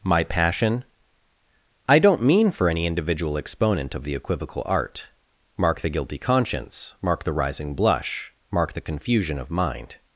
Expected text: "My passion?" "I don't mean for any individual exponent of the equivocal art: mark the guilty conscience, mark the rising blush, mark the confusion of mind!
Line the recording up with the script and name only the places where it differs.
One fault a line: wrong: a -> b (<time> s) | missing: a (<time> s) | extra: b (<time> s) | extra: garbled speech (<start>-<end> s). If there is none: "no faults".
no faults